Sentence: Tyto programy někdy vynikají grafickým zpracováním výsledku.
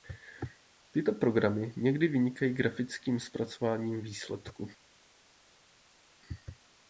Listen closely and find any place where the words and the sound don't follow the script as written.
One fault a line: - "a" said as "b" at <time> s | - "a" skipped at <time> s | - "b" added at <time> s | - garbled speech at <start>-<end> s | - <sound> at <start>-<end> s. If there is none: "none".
none